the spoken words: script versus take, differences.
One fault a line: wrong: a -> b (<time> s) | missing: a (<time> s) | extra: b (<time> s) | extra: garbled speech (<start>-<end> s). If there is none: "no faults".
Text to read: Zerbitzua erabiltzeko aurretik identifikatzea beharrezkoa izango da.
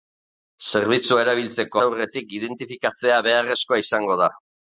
no faults